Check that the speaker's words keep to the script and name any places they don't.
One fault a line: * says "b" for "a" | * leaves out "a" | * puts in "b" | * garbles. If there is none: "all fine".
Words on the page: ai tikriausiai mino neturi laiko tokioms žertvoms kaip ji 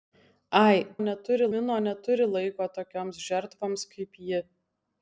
* says "neturi" for "tikriausiai"